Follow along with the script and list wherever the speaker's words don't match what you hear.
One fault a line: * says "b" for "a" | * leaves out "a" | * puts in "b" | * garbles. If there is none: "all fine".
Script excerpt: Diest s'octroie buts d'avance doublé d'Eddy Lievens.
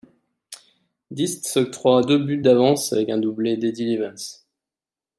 * puts in "deux"
* puts in "avec un"